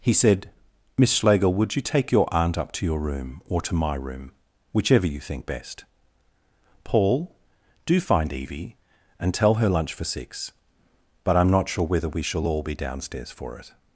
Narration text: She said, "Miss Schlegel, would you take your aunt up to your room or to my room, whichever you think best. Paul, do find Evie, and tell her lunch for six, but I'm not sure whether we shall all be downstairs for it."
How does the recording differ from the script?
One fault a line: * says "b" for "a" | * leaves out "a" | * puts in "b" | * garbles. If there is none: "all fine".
* says "He" for "She"